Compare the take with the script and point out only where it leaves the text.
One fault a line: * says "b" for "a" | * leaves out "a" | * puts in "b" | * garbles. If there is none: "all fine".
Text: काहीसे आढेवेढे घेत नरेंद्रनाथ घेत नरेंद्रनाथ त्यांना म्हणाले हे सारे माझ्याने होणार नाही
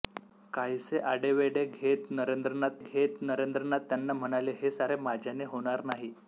all fine